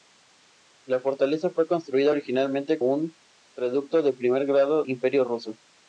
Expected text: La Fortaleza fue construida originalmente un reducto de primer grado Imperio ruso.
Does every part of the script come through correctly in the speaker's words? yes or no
yes